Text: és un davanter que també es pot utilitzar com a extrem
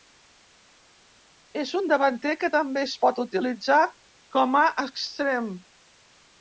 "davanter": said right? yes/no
yes